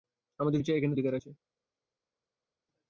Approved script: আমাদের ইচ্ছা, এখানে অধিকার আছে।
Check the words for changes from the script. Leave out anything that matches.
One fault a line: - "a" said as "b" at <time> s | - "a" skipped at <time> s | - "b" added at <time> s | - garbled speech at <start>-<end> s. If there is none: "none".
none